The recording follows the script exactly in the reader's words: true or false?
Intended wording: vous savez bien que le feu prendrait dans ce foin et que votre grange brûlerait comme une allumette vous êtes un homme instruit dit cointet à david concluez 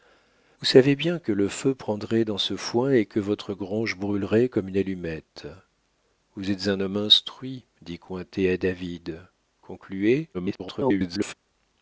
false